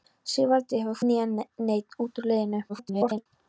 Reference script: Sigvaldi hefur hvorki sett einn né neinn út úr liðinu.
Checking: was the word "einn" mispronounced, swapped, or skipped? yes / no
yes